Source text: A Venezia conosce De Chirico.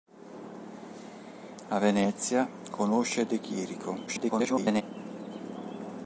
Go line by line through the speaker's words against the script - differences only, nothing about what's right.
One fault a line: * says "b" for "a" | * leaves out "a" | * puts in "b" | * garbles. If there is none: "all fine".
* garbles